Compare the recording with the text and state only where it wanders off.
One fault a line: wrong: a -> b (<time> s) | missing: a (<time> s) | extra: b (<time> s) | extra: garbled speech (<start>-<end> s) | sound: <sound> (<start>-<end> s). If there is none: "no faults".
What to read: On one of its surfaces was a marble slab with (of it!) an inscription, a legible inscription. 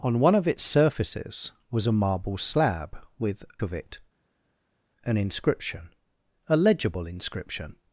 no faults